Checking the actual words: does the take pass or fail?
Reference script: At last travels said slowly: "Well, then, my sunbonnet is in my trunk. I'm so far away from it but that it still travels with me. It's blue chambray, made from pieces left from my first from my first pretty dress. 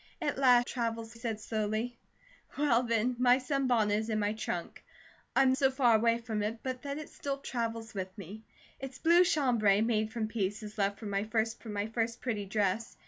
pass